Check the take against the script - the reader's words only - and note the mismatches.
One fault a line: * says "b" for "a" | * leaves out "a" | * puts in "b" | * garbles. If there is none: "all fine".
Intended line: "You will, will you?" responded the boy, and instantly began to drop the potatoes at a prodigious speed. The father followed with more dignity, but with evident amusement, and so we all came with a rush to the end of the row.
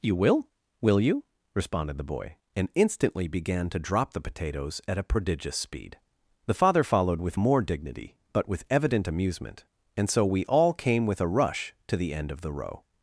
all fine